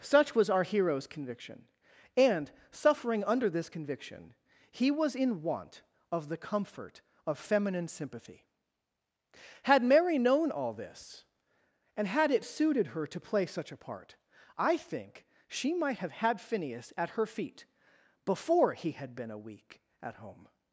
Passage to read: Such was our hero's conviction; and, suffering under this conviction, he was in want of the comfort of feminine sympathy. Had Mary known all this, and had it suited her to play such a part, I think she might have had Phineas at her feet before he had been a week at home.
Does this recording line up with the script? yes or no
yes